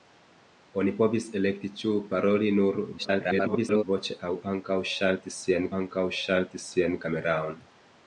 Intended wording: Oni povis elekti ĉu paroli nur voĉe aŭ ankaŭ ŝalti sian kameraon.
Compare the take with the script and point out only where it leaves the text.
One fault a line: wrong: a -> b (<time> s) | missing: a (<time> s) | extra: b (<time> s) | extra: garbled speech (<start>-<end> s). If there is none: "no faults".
extra: garbled speech (3.0-3.8 s)
extra: ankaŭ ŝalti sian (5.8 s)